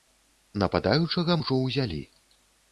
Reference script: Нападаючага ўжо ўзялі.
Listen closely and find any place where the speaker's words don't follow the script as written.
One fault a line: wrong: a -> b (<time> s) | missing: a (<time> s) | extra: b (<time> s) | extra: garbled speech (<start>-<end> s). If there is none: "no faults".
no faults